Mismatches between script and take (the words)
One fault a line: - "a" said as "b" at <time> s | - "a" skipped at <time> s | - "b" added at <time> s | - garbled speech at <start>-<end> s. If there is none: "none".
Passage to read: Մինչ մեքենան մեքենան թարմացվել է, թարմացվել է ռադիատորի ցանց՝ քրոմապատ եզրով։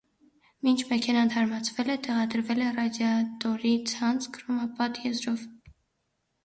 - "մեքենան" skipped at 1.3 s
- "թարմացվել" said as "տեղադրվել" at 2.1 s